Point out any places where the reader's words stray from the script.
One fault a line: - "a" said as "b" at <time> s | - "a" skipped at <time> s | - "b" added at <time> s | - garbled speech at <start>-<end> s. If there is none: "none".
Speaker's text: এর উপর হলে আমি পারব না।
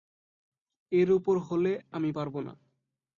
none